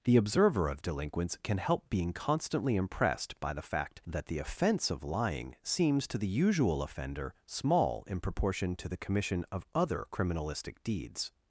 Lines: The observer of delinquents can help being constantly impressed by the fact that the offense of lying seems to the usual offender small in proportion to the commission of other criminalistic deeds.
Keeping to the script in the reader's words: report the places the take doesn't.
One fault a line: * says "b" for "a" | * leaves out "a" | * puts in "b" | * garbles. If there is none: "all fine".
all fine